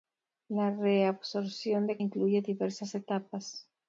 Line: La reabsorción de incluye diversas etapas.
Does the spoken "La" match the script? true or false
true